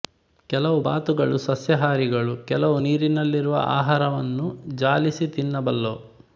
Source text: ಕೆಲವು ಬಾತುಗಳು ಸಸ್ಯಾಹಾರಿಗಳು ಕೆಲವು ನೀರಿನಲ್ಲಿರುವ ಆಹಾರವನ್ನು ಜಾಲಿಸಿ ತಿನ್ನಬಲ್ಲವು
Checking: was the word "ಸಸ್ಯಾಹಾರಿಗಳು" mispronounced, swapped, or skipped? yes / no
no